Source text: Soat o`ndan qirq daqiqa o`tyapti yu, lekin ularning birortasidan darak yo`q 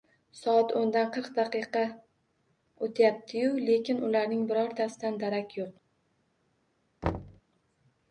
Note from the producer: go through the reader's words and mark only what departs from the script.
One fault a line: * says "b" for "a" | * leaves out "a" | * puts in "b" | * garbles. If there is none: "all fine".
all fine